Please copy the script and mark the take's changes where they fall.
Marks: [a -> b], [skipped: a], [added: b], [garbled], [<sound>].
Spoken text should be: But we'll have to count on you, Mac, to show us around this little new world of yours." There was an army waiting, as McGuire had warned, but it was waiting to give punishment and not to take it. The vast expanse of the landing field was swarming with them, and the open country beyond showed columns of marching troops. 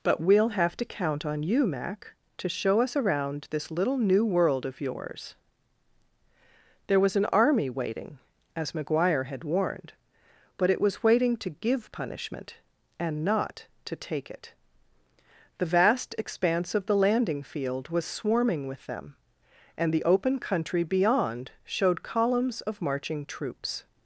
But we'll have to count on you, Mac, to show us around this little new world of yours." There was an army waiting, as McGuire had warned, but it was waiting to give punishment and not to take it. The vast expanse of the landing field was swarming with them, and the open country beyond showed columns of marching troops.